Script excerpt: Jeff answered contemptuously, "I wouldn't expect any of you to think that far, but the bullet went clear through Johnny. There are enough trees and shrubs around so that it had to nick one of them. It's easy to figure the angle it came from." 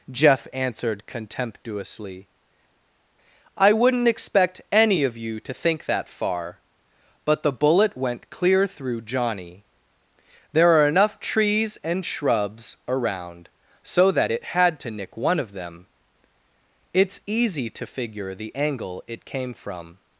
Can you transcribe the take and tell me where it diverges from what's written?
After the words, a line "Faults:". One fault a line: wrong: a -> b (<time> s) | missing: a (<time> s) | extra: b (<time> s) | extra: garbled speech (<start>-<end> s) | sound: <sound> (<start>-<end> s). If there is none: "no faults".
Jeff answered contemptuously, "I wouldn't expect any of you to think that far, but the bullet went clear through Johnny. There are enough trees and shrubs around so that it had to nick one of them. It's easy to figure the angle it came from."
Faults:
no faults